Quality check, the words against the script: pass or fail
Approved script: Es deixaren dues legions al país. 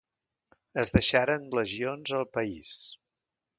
fail